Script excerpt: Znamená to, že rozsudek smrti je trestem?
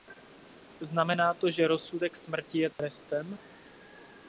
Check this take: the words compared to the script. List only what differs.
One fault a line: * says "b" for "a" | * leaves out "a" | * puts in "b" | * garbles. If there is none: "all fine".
all fine